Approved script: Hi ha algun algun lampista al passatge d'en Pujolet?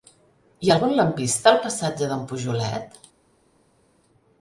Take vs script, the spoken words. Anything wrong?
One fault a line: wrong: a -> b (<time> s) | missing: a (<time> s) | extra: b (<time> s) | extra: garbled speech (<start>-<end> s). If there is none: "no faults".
missing: algun (0.9 s)